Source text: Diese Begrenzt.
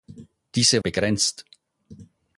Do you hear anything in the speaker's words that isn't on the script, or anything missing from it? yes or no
no